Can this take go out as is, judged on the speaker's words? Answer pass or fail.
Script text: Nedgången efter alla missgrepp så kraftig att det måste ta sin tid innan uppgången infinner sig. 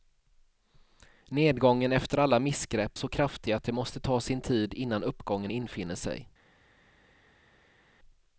pass